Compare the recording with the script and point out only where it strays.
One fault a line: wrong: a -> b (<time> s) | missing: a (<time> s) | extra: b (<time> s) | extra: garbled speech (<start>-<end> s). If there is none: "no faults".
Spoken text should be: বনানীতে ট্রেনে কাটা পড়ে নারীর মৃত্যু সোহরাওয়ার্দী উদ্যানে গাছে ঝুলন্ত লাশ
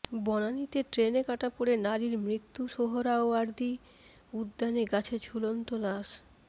no faults